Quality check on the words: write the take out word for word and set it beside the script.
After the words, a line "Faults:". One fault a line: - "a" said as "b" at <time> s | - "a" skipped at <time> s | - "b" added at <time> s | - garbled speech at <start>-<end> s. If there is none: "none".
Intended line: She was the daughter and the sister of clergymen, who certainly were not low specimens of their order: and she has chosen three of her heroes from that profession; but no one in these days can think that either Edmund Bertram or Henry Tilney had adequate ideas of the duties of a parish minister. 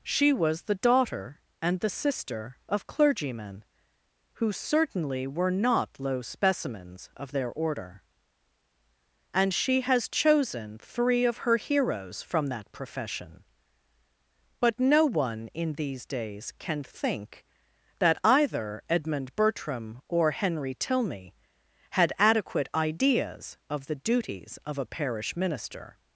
She was the daughter and the sister of clergymen, who certainly were not low specimens of their order: and she has chosen three of her heroes from that profession; but no one in these days can think that either Edmund Bertram or Henry Tilney had adequate ideas of the duties of a parish minister.
Faults:
none